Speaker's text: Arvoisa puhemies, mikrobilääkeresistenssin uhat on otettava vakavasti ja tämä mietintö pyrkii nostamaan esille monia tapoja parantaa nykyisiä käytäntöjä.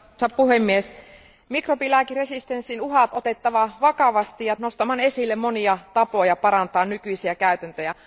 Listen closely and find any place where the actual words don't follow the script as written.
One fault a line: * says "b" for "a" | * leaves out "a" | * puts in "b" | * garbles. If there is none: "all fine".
* leaves out "on"
* leaves out "tämä mietintö pyrkii"